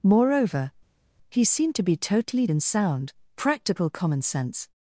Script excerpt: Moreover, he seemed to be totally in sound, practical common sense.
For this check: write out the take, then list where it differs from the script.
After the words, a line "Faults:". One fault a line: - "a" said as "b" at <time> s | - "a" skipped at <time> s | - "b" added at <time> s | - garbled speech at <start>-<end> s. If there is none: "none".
Moreover, he seemed to be totally in sound, practical common sense.
Faults:
none